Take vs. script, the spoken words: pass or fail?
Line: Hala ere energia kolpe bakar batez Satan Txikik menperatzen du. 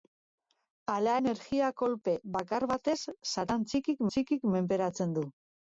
fail